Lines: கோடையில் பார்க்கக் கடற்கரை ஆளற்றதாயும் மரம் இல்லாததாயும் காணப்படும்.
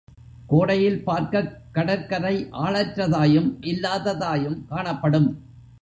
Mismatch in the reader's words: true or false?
true